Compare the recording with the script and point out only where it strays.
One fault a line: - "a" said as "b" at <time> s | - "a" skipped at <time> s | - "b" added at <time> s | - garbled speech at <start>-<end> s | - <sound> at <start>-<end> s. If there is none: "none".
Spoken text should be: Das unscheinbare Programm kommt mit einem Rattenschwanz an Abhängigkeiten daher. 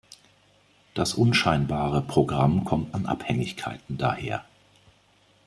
- "mit einem Rattenschwanz" skipped at 2.9 s